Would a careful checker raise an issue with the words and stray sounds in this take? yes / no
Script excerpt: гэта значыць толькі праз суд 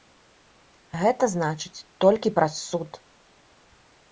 no